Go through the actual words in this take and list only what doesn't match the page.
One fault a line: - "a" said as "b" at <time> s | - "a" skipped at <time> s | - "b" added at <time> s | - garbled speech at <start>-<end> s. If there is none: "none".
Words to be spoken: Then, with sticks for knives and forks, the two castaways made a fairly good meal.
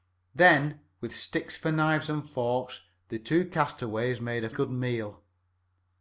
- "fairly" skipped at 4.5 s